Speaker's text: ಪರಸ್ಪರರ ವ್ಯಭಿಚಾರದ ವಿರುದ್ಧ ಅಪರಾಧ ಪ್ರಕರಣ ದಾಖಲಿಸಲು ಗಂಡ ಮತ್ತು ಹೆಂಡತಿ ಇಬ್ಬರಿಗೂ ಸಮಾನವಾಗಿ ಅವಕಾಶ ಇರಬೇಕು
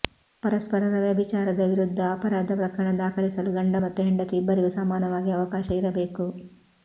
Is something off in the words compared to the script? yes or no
no